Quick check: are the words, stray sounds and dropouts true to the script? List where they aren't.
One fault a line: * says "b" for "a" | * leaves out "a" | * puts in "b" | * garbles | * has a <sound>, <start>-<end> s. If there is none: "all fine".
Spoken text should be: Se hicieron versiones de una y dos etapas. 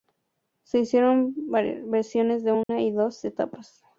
* has a dropout, 2.6-2.7 s